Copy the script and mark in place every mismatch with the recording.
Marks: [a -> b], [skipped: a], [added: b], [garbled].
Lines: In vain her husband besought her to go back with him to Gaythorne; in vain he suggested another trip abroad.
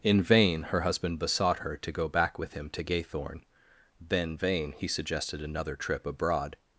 In vain her husband besought her to go back with him to Gaythorne; [in -> then] vain he suggested another trip abroad.